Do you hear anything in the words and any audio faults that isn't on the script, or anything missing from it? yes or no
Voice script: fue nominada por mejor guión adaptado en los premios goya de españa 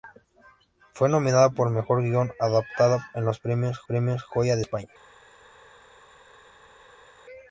yes